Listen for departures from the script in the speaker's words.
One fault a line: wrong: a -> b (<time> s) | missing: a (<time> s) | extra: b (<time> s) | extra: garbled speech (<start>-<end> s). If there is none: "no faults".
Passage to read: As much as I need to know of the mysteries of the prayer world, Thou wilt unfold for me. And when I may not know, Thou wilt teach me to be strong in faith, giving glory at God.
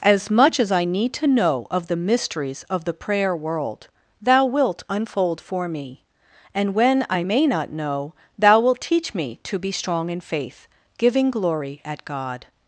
no faults